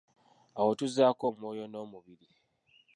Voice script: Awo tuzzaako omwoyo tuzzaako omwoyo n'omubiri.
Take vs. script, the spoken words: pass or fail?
fail